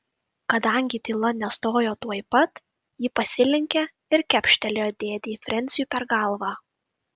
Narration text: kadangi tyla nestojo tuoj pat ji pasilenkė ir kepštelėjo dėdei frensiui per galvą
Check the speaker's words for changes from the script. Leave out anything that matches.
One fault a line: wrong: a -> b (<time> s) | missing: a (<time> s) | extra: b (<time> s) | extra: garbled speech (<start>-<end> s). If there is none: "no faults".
no faults